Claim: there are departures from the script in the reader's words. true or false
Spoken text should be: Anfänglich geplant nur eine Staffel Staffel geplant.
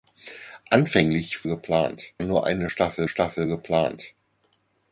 false